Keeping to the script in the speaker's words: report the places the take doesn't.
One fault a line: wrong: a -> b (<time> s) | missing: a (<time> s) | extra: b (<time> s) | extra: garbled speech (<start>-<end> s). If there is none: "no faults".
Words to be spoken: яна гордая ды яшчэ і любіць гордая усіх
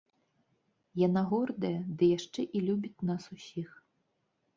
wrong: гордая -> нас (3.1 s)